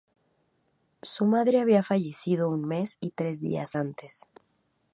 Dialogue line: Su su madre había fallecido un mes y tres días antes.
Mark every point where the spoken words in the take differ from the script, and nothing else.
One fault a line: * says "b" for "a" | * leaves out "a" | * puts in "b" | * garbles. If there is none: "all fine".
* leaves out "su"